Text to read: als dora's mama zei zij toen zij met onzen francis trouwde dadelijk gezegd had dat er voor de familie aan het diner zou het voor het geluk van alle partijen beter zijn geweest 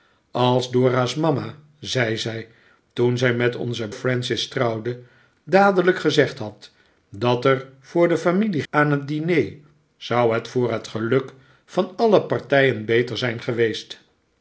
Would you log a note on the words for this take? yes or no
no